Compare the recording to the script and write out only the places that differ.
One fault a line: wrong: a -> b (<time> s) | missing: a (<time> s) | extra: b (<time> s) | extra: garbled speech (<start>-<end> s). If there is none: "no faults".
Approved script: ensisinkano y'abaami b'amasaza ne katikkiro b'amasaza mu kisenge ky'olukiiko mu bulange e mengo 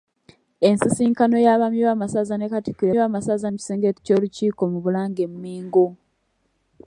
no faults